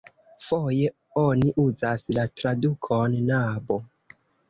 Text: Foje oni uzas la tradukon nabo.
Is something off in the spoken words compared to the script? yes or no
no